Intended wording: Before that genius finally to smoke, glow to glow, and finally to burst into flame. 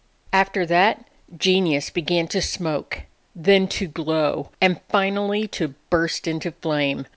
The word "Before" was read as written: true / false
false